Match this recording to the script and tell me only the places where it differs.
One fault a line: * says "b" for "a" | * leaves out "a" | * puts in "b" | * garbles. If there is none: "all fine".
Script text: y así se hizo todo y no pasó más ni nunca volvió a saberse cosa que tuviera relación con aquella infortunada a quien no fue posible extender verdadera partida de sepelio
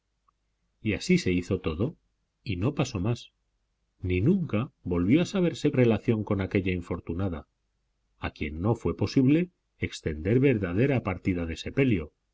* leaves out "cosa que tuviera"